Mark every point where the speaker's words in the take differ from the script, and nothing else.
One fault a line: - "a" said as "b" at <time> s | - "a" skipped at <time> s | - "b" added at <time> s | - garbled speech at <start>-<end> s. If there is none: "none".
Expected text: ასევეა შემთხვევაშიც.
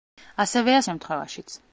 none